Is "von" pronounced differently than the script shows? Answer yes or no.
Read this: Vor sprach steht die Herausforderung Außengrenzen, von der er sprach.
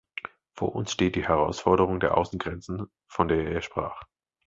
no